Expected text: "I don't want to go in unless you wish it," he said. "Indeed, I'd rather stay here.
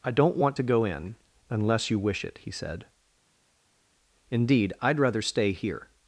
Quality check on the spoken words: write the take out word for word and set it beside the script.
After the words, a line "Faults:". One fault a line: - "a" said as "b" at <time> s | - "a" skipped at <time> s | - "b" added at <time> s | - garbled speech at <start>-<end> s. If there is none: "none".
"I don't want to go in unless you wish it," he said. "Indeed, I'd rather stay here.
Faults:
none